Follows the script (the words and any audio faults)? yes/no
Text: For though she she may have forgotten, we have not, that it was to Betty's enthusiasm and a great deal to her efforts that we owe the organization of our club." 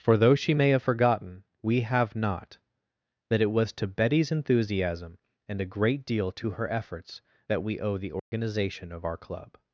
no